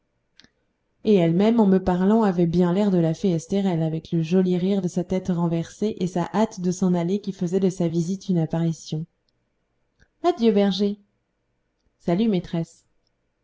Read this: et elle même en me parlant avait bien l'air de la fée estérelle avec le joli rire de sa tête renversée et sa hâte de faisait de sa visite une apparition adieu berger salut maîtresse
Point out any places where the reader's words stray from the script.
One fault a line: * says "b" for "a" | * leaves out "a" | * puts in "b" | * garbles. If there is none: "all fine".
* puts in "s'en aller qui"